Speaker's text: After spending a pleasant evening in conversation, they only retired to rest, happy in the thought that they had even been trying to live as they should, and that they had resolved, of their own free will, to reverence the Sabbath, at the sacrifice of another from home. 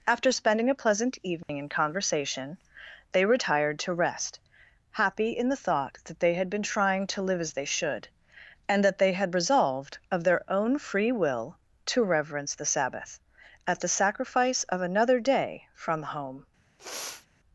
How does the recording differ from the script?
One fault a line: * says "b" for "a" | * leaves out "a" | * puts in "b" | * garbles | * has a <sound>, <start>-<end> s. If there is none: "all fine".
* has a dropout, 1.4-1.5 s
* leaves out "only"
* leaves out "even"
* puts in "day"
* has a sniff, 16.8-17.3 s